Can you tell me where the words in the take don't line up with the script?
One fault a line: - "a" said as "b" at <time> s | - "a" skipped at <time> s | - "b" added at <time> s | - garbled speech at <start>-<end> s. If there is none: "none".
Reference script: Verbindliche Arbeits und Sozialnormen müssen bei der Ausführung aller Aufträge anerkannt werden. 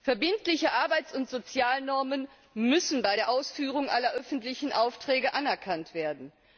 - "öffentlichen" added at 4.1 s